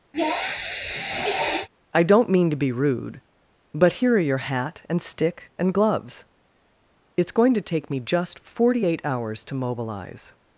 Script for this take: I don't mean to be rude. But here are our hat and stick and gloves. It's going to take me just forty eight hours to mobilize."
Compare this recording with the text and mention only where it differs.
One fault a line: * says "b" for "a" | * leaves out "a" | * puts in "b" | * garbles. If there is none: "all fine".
* says "your" for "our"